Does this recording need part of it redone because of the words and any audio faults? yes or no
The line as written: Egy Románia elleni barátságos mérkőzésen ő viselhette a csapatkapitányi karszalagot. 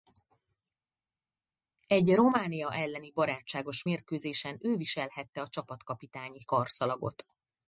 no